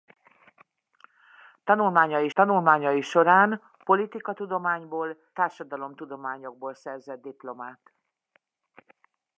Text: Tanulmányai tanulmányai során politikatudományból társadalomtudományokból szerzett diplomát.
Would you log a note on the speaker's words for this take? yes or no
no